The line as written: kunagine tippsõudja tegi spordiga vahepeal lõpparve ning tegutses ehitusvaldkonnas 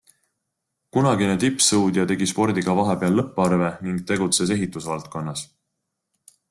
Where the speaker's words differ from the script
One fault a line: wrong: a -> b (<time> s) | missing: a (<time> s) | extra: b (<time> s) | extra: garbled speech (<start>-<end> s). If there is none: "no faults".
no faults